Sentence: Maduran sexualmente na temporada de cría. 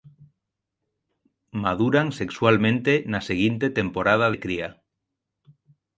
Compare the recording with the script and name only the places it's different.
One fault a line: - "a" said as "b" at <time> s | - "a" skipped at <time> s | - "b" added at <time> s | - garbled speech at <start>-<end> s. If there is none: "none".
- "seguinte" added at 3.3 s